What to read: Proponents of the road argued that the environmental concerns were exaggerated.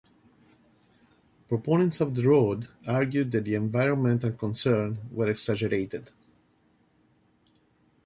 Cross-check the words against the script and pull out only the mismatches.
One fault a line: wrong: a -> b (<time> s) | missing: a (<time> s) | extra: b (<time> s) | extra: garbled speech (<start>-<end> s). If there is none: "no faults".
no faults